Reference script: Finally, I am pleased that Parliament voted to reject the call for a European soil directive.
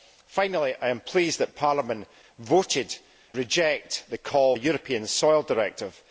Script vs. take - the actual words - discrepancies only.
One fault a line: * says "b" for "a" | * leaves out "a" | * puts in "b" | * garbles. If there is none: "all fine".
* leaves out "to"
* leaves out "for"